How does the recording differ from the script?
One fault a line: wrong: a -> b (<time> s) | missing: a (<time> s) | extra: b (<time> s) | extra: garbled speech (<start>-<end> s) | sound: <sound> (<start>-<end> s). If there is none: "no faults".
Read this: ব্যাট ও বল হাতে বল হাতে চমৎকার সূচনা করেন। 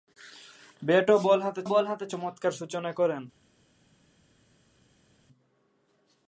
no faults